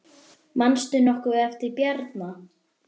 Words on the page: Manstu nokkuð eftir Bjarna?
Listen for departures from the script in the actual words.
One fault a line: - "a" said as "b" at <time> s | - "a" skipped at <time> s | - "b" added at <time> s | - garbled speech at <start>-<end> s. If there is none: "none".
none